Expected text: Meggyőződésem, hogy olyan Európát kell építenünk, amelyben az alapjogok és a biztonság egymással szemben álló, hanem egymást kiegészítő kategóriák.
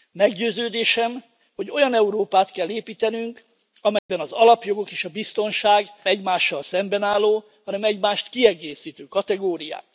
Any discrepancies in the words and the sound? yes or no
yes